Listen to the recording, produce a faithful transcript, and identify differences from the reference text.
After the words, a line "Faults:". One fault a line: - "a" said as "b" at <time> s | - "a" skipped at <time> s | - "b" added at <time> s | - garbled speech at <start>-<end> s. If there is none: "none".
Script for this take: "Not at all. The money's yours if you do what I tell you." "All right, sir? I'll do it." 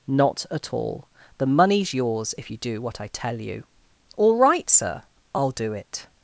"Not at all. The money's yours if you do what I tell you." "All right, sir? I'll do it."
Faults:
none